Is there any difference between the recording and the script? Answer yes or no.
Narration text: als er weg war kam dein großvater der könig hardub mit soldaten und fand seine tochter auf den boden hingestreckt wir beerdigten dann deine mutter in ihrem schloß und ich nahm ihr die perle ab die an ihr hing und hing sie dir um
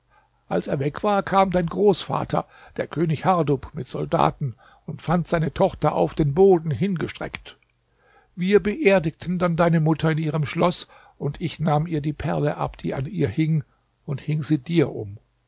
no